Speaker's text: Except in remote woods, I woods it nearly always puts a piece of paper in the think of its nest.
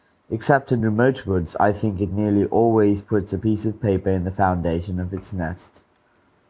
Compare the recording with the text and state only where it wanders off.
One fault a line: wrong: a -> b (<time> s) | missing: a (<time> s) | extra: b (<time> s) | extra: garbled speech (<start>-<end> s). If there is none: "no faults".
wrong: woods -> think (1.7 s)
wrong: think -> foundation (4.3 s)